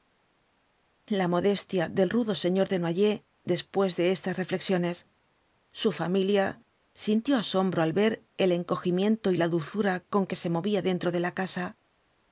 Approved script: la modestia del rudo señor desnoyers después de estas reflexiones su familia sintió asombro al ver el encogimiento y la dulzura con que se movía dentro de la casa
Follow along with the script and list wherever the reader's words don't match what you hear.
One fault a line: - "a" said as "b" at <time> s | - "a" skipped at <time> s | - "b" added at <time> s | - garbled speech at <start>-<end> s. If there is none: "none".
none